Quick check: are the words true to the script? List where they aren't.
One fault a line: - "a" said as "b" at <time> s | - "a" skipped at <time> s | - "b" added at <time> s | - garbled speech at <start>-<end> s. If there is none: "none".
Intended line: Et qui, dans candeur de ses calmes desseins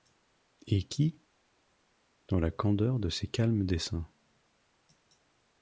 - "la" added at 2.4 s